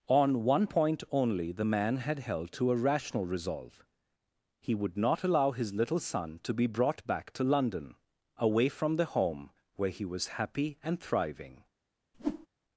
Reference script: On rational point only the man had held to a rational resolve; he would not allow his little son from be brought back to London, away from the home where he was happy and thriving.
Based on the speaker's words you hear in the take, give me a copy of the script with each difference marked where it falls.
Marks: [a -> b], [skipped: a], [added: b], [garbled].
On [rational -> one] point only the man had held to a rational resolve; he would not allow his little son [from -> to] be brought back to London, away from the home where he was happy and thriving.